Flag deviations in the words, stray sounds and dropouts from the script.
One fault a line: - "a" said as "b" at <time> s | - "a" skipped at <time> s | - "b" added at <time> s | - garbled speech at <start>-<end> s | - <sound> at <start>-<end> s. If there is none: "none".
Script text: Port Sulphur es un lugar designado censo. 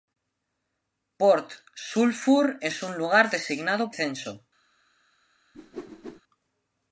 - whoosh at 5.5-6.2 s